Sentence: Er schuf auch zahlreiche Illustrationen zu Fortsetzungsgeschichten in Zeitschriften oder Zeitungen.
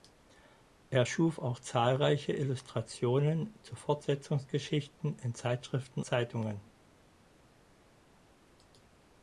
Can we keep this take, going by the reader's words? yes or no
no